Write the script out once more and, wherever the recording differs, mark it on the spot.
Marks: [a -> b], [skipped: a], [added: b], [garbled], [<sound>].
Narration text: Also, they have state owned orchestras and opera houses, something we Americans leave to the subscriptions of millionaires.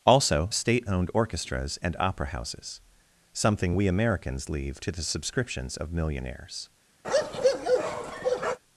Also, [skipped: they have] state owned orchestras and opera houses, something we Americans leave to the subscriptions of millionaires. [bark]